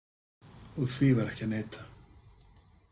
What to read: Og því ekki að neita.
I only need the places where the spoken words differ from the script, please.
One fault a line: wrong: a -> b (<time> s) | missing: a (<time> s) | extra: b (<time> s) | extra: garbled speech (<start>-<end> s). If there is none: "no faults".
extra: var (1.2 s)